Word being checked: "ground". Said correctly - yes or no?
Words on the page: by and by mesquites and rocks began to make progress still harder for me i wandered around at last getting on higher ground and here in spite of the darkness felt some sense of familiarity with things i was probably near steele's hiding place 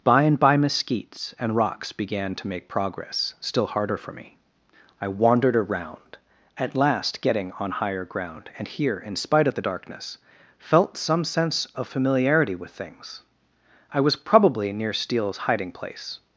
yes